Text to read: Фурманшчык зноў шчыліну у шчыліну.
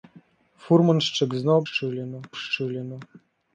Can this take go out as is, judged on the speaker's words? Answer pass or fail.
pass